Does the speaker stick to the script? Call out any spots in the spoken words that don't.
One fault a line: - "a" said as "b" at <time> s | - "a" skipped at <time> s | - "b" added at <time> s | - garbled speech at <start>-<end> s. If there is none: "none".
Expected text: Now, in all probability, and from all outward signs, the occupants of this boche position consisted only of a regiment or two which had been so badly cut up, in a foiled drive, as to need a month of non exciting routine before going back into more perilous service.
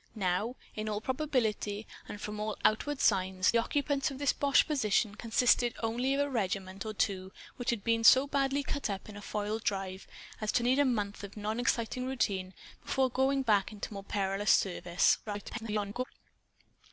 - "the" skipped at 3.5 s
- garbled speech at 15.3-16.0 s